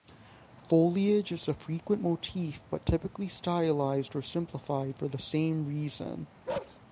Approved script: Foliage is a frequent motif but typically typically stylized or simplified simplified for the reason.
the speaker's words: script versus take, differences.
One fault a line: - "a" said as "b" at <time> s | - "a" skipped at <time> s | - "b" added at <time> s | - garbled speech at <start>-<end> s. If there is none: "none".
- "typically" skipped at 3.3 s
- "simplified" skipped at 5.0 s
- "same" added at 5.2 s